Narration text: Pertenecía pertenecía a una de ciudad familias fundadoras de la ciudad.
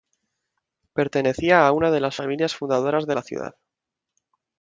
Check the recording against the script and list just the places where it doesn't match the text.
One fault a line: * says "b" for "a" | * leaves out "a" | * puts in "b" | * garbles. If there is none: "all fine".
* leaves out "pertenecía"
* says "las" for "ciudad"